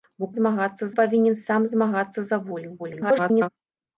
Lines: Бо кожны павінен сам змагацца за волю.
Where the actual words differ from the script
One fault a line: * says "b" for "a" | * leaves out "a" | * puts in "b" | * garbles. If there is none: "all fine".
* says "змагацца" for "кожны"
* garbles